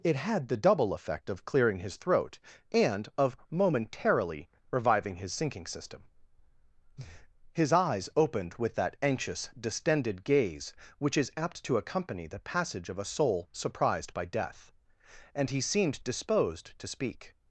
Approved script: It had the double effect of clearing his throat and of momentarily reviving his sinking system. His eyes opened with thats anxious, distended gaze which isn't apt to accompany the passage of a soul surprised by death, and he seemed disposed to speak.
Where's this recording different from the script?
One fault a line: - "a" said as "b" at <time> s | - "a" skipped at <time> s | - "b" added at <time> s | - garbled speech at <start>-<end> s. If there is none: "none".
- "thats" said as "that" at 8.7 s
- "isn't" said as "is" at 11.2 s